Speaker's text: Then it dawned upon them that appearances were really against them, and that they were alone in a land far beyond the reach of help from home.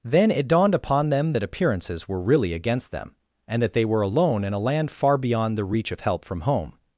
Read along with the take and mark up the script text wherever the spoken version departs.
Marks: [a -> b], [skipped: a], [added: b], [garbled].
Then it dawned upon them that appearances were really against them, and that they were alone in a land far beyond the reach of help from home.